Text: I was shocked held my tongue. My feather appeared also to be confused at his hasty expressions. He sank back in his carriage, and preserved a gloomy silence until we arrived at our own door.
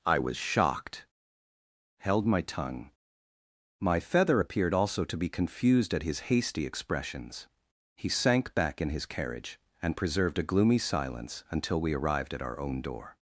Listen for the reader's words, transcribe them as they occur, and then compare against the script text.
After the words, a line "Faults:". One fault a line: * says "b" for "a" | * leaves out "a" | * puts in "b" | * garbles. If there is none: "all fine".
I was shocked held my tongue. My feather appeared also to be confused at his hasty expressions. He sank back in his carriage, and preserved a gloomy silence until we arrived at our own door.
Faults:
all fine